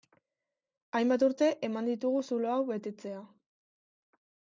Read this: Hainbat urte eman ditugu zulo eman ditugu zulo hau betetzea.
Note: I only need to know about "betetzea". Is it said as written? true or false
true